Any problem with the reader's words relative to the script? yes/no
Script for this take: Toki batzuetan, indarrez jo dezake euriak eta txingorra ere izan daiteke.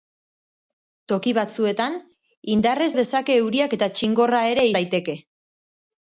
yes